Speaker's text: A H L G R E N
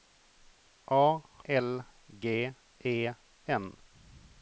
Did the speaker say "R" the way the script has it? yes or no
no